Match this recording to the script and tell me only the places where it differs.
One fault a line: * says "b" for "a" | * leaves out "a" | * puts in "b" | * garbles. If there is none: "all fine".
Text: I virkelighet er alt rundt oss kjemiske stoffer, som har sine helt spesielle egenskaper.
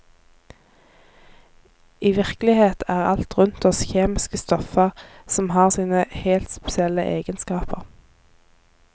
all fine